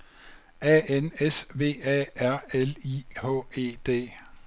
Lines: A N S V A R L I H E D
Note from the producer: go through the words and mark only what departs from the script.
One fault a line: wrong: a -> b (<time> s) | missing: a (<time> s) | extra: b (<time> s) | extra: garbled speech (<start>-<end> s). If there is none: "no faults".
no faults